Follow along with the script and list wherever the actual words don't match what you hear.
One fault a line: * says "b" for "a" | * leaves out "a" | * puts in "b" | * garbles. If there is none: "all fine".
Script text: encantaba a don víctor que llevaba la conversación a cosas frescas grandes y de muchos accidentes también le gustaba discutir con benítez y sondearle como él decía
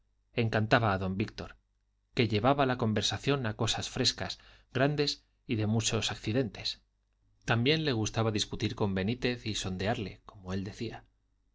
all fine